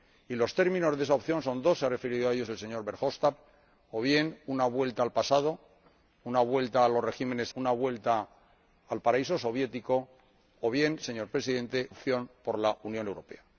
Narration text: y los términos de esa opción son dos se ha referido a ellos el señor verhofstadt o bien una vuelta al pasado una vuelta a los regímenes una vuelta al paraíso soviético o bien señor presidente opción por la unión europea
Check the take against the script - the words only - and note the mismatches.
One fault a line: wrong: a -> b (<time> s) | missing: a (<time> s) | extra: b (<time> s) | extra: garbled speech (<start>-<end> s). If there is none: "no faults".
no faults